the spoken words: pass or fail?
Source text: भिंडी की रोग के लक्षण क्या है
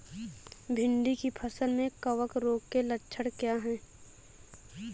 fail